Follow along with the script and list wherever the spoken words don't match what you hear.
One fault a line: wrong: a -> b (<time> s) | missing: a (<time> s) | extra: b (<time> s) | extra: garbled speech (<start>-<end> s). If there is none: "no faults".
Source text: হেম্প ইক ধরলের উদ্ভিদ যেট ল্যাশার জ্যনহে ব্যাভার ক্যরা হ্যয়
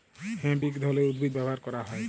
missing: যেট ল্যাশার জ্যনহে (1.3 s)